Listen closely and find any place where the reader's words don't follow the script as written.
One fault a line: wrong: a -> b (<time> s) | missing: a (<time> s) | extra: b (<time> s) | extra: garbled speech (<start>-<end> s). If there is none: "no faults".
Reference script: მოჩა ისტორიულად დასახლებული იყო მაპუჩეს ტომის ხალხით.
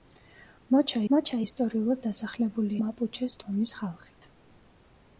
extra: მოჩა (1.1 s)
missing: იყო (2.8 s)